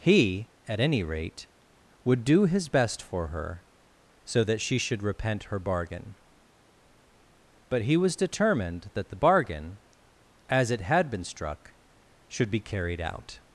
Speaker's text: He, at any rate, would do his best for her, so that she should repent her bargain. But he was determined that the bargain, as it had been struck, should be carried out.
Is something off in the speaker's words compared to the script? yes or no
no